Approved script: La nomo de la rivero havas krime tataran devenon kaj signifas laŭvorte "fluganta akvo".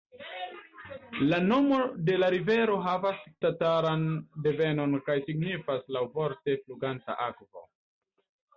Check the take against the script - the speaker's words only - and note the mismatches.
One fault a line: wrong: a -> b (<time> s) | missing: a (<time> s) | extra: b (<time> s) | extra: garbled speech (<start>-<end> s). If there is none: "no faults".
missing: krime (3.2 s)